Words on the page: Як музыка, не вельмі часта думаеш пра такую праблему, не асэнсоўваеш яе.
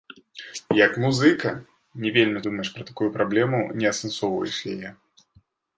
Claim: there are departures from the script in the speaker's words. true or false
true